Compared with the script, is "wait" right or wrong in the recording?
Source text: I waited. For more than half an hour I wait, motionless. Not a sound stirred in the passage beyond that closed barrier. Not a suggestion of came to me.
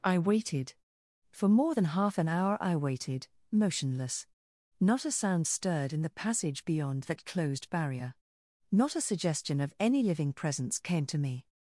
wrong